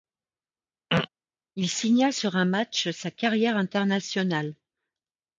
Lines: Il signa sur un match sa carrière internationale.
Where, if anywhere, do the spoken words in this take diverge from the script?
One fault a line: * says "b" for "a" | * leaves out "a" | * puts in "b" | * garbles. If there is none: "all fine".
all fine